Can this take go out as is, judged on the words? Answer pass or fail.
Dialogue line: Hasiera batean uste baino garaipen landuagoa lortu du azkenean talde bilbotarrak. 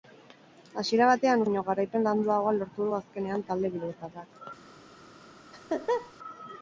fail